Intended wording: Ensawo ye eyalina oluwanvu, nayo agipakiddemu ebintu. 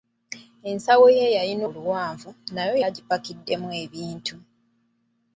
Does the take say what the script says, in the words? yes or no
yes